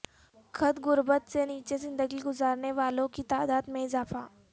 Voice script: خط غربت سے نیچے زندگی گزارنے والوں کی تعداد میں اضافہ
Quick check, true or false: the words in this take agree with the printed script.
true